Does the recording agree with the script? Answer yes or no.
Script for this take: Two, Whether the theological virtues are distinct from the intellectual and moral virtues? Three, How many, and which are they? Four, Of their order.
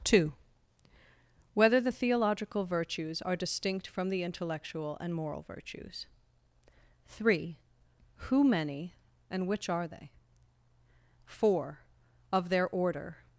no